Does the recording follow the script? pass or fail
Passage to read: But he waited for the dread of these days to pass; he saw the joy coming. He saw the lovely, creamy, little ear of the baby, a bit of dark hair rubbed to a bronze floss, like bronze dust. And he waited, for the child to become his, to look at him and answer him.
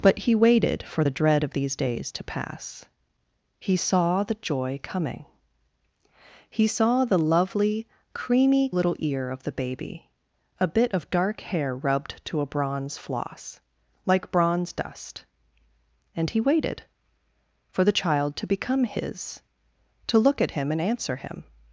pass